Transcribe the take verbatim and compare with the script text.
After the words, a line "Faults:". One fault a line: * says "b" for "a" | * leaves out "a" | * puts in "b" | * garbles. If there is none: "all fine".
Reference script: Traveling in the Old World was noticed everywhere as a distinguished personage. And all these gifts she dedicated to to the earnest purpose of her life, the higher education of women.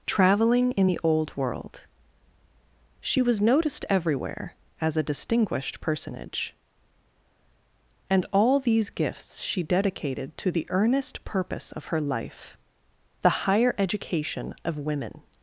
Traveling in the Old World she was noticed everywhere as a distinguished personage. And all these gifts she dedicated to the earnest purpose of her life, the higher education of women.
Faults:
* puts in "she"
* leaves out "to"